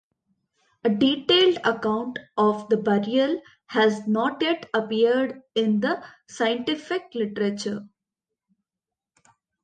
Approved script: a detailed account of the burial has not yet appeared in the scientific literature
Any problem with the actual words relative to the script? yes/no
no